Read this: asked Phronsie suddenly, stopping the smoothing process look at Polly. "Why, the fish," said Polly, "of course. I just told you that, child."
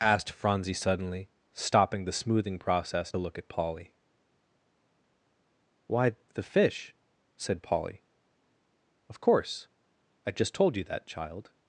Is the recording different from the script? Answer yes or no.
no